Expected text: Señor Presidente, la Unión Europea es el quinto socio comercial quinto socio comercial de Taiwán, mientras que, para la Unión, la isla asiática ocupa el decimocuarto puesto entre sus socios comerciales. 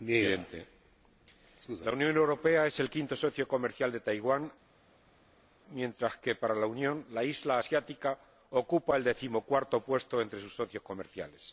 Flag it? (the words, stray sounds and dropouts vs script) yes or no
yes